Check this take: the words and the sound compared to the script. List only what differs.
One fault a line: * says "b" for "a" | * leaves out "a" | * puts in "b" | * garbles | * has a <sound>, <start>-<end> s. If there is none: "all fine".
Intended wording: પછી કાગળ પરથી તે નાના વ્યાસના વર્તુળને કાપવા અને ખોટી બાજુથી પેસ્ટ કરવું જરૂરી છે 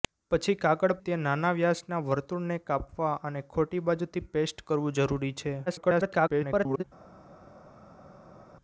* leaves out "પરથી"
* garbles